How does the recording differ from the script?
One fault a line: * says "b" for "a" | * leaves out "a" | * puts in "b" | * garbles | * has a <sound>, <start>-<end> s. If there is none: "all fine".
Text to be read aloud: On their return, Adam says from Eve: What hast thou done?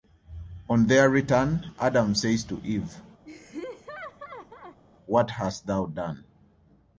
* says "to" for "from"
* has a laugh, 3.2-4.8 s